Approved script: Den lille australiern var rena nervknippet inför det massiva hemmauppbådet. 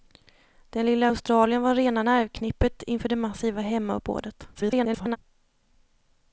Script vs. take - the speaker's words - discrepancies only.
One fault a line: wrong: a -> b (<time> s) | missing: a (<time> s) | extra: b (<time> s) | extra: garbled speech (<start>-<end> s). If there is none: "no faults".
extra: garbled speech (4.5-5.2 s)